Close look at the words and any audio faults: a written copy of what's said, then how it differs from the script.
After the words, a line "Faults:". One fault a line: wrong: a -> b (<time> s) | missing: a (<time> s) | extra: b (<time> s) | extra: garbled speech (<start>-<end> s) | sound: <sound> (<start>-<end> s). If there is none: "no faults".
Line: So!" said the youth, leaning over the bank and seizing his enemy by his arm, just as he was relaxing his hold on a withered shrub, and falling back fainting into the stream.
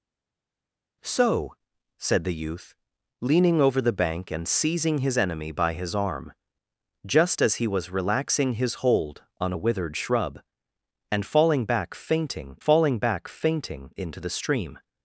So!" said the youth, leaning over the bank and seizing his enemy by his arm, just as he was relaxing his hold on a withered shrub, and falling back fainting falling back fainting into the stream.
Faults:
extra: falling back fainting (12.6 s)